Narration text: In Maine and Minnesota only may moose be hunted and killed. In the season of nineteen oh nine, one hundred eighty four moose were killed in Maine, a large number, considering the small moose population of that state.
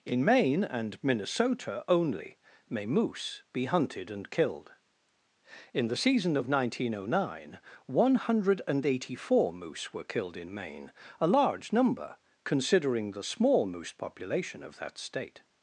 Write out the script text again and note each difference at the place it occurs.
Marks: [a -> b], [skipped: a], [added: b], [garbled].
In Maine and Minnesota only may moose be hunted and killed. In the season of nineteen oh nine, one hundred eighty four moose were killed in Maine, a large number, considering the small moose population of that state.